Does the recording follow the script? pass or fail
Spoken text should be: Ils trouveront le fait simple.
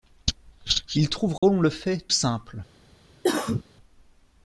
pass